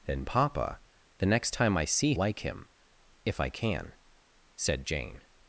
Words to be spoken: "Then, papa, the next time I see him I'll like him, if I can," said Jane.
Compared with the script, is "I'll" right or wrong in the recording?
wrong